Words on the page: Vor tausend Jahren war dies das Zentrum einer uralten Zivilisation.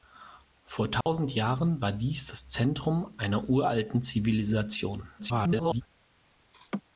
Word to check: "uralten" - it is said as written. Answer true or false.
true